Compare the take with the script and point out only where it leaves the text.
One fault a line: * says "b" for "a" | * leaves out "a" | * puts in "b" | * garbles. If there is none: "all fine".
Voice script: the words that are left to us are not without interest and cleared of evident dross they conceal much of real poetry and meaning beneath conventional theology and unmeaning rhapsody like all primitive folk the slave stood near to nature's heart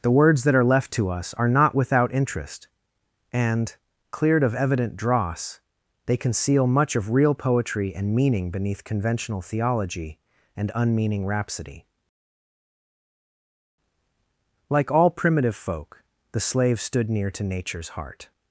all fine